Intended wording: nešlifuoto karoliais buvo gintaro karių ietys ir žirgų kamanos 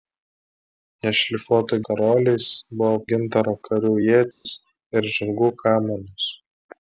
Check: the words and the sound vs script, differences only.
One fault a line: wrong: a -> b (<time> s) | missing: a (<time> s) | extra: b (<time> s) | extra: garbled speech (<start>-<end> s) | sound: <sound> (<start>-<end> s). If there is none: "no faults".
sound: dropout (4.3-4.5 s)